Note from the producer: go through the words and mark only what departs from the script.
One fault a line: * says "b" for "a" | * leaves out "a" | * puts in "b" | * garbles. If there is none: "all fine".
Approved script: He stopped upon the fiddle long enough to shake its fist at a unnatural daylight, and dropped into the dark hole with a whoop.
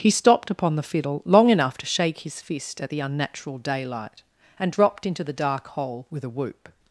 * says "his" for "its"
* says "the" for "a"